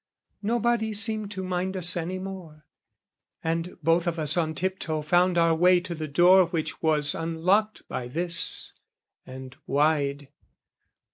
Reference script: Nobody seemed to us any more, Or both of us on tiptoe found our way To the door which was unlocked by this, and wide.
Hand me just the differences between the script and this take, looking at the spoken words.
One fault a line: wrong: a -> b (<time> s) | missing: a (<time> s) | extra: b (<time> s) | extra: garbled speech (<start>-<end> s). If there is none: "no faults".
extra: mind (1.4 s)
wrong: Or -> And (3.4 s)